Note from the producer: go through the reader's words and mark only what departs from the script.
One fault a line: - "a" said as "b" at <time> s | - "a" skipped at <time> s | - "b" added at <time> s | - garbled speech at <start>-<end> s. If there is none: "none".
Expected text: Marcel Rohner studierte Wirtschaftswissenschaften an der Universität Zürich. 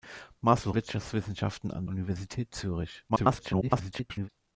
- "Rohner studierte" skipped at 0.7 s
- "der" skipped at 1.9 s
- garbled speech at 3.1-4.3 s